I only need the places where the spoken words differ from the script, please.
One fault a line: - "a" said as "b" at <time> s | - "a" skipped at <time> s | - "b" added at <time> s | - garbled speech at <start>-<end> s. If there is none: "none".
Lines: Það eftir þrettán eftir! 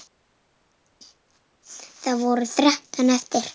- "eftir" said as "voru" at 2.2 s